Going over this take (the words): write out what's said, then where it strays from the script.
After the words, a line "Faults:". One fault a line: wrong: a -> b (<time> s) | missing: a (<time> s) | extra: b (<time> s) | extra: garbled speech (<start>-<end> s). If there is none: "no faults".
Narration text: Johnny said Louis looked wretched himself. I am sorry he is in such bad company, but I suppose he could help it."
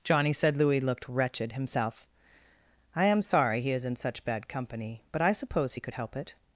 Johnny said Louis looked wretched himself. I am sorry he is in such bad company, but I suppose he could help it."
Faults:
no faults